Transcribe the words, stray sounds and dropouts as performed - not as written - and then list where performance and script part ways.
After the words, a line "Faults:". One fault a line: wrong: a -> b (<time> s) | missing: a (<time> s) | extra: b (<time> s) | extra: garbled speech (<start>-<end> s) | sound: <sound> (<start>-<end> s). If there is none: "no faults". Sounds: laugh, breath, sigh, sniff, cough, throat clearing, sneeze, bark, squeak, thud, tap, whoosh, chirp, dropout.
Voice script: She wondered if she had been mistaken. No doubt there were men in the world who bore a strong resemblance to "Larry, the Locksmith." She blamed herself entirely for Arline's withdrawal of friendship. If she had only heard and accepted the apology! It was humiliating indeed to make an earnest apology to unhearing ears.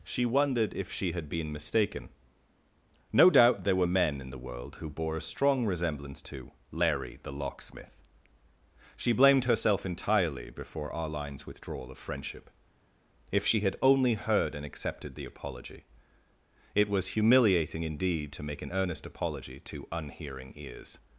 She wondered if she had been mistaken. No doubt there were men in the world who bore a strong resemblance to "Larry, the Locksmith." She blamed herself entirely before Arline's withdrawal of friendship. If she had only heard and accepted the apology! It was humiliating indeed to make an earnest apology to unhearing ears.
Faults:
wrong: for -> before (10.5 s)